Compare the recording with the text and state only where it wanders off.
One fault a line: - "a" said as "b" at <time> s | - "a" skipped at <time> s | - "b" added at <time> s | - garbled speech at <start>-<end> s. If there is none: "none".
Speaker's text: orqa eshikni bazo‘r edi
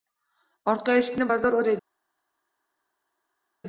none